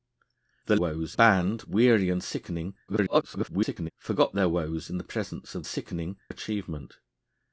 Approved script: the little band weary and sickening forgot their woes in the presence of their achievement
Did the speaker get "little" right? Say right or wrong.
wrong